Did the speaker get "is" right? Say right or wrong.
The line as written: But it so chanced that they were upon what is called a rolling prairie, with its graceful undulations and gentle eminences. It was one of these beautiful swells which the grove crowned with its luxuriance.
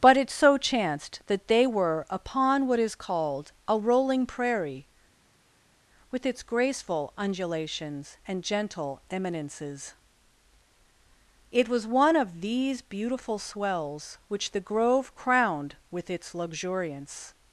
right